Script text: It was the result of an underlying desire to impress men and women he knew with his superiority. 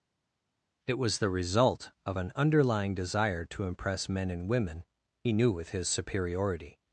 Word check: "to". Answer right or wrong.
right